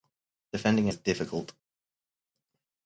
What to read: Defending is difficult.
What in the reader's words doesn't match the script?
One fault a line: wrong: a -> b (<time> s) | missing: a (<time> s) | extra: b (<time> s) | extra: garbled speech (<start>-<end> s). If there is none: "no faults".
no faults